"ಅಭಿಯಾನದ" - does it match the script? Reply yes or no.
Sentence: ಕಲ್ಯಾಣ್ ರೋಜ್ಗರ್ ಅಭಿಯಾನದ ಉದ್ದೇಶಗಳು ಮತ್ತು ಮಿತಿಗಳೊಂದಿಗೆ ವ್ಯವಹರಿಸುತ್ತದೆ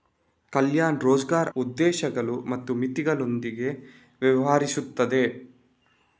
no